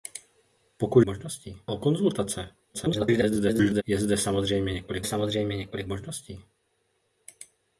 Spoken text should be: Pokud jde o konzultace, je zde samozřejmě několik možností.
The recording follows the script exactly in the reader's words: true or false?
false